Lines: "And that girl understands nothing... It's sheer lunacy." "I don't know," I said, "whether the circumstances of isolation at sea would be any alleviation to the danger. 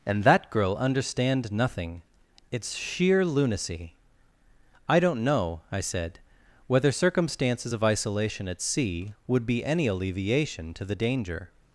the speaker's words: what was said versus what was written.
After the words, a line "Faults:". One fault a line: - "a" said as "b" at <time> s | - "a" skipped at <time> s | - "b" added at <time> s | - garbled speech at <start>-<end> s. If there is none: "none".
"And that girl understand nothing... It's sheer lunacy." "I don't know," I said, "whether circumstances of isolation at sea would be any alleviation to the danger.
Faults:
- "understands" said as "understand" at 0.8 s
- "the" skipped at 6.9 s